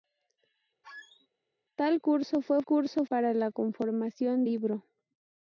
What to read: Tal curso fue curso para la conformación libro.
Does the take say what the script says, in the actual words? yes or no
yes